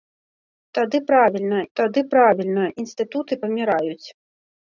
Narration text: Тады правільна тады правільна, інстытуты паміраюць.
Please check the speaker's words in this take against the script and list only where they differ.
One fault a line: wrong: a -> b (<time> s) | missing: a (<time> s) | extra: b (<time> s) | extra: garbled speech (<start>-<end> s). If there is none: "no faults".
no faults